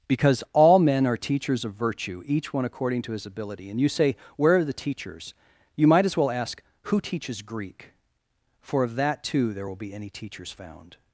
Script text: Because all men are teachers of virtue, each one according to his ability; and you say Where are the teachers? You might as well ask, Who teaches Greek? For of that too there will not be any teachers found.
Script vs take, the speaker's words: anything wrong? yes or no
yes